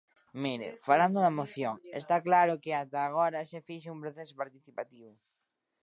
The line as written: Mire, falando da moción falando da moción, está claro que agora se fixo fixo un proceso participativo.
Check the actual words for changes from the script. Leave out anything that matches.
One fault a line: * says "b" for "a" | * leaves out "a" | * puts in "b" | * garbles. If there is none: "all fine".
* leaves out "falando da moción"
* puts in "ata"
* leaves out "fixo"